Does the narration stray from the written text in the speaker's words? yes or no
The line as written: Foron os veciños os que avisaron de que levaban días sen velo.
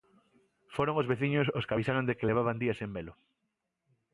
no